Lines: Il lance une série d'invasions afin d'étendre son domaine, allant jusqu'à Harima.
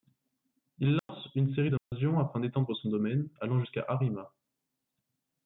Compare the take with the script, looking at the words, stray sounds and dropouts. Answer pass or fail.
fail